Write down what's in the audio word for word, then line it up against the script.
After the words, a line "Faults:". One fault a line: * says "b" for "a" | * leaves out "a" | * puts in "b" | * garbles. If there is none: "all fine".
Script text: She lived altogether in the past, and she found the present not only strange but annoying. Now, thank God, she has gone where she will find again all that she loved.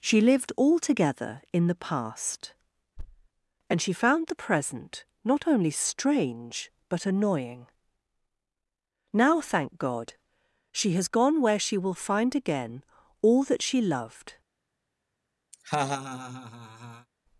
She lived altogether in the past, and she found the present not only strange but annoying. Now, thank God, she has gone where she will find again all that she loved.
Faults:
all fine